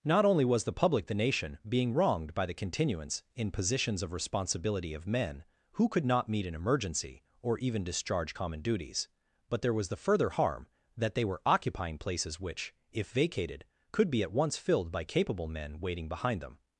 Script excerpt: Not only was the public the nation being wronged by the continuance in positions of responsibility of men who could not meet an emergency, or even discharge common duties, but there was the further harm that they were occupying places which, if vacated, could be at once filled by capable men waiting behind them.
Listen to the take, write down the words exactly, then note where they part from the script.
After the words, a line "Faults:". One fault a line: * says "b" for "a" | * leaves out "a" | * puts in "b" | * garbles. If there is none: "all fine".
Not only was the public the nation being wronged by the continuance in positions of responsibility of men who could not meet an emergency, or even discharge common duties, but there was the further harm that they were occupying places which, if vacated, could be at once filled by capable men waiting behind them.
Faults:
all fine